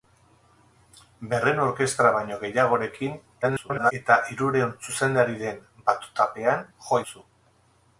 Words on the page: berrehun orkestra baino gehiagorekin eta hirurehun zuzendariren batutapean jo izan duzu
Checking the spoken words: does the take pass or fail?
fail